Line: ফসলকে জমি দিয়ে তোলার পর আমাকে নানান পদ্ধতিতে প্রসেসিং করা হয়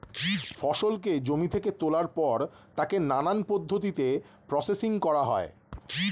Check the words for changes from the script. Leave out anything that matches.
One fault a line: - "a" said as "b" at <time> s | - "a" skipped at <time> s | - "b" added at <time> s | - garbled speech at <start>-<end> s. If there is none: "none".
- "দিয়ে" said as "থেকে" at 1.5 s
- "আমাকে" said as "তাকে" at 2.8 s